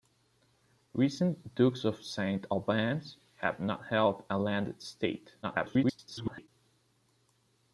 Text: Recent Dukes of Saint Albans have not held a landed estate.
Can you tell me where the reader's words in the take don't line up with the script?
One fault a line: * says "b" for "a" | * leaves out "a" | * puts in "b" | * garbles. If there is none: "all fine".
* garbles